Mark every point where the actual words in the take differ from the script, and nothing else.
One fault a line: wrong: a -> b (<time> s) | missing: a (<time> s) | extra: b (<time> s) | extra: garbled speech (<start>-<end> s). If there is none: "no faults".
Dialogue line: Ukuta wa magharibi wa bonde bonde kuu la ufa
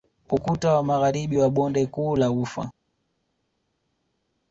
missing: bonde (1.9 s)